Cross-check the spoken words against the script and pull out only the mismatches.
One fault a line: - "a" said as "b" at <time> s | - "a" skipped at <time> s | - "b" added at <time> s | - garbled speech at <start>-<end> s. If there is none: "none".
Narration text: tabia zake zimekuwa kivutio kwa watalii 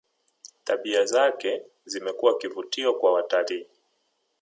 none